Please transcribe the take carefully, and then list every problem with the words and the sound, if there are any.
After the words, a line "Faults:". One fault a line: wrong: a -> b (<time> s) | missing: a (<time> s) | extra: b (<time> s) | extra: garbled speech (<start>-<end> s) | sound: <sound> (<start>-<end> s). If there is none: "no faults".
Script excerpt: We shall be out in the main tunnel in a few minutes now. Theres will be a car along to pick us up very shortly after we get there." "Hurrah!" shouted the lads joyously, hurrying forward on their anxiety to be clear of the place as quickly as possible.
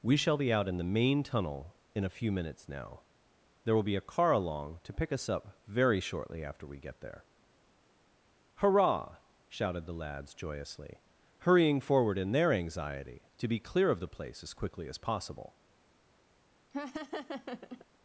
We shall be out in the main tunnel in a few minutes now. There will be a car along to pick us up very shortly after we get there." "Hurrah!" shouted the lads joyously, hurrying forward in their anxiety to be clear of the place as quickly as possible.
Faults:
wrong: Theres -> There (3.6 s)
wrong: on -> in (12.2 s)
sound: laugh (16.7-17.9 s)